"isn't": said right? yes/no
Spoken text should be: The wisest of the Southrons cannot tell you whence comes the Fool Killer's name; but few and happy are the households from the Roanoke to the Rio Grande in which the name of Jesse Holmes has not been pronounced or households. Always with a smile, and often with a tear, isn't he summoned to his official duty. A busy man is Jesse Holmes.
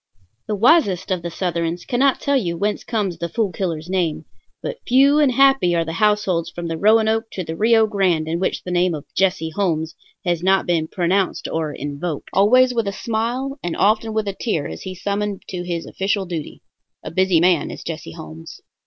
no